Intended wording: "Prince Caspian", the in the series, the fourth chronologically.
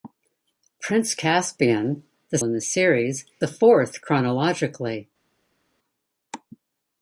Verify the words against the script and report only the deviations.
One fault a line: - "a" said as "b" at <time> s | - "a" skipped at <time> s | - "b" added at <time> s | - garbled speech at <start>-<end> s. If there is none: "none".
none